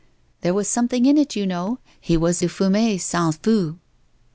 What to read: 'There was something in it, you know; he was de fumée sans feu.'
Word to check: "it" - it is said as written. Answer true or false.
true